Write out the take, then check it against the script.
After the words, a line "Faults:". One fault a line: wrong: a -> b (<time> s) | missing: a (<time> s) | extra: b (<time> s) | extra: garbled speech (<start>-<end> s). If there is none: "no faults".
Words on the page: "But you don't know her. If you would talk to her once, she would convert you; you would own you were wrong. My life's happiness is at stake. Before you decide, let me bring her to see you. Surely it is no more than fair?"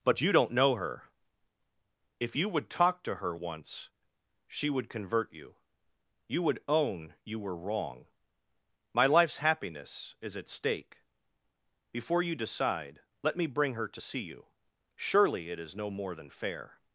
"But you don't know her. If you would talk to her once, she would convert you; you would own you were wrong. My life's happiness is at stake. Before you decide, let me bring her to see you. Surely it is no more than fair?"
Faults:
no faults